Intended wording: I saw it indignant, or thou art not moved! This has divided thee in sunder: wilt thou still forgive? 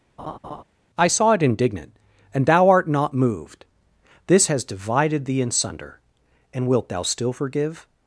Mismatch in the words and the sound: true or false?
true